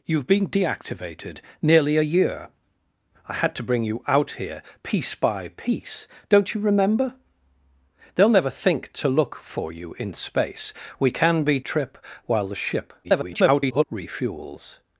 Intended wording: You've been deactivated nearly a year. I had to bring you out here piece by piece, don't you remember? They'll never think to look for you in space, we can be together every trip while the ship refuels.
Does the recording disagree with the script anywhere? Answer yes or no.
yes